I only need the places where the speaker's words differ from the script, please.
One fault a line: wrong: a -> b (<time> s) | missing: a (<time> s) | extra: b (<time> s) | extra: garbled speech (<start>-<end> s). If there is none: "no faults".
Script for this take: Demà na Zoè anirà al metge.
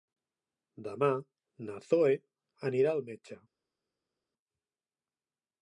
no faults